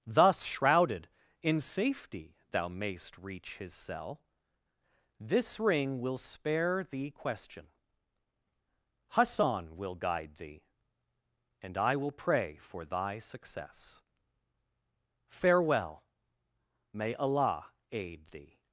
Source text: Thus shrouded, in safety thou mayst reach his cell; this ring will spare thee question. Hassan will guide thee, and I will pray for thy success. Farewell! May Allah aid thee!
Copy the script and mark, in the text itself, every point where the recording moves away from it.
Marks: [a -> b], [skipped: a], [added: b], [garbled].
Thus shrouded, in safety thou mayst reach his cell; this ring will spare thee question. Hassan will guide thee, and I will pray for thy success. Farewell! May Allah aid thee!